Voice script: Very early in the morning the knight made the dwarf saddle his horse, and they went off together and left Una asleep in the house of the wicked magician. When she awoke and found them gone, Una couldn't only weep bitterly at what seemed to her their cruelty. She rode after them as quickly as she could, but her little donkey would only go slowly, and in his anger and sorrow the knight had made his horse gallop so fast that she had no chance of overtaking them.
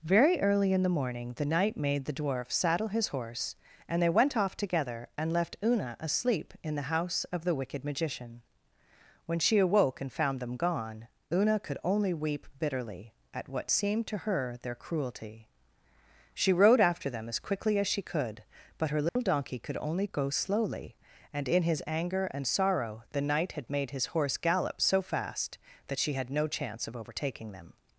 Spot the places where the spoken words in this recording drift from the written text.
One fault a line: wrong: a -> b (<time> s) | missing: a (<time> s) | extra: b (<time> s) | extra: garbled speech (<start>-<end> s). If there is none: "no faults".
wrong: couldn't -> could (11.6 s)
wrong: would -> could (19.6 s)